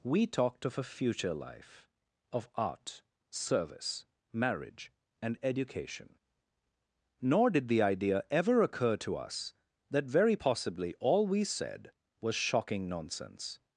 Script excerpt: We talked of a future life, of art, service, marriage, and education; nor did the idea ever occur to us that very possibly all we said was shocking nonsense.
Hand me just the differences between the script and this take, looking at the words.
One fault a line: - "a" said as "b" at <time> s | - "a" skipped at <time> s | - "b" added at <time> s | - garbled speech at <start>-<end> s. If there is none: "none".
none